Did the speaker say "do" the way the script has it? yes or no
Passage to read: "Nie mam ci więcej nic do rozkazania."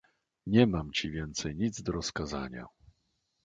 yes